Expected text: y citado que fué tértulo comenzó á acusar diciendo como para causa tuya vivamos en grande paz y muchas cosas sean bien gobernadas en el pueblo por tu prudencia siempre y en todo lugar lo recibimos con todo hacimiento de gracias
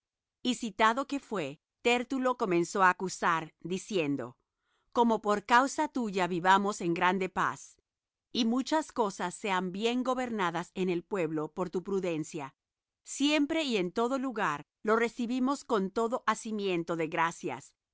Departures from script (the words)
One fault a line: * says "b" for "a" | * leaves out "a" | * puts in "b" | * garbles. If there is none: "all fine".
* says "por" for "para"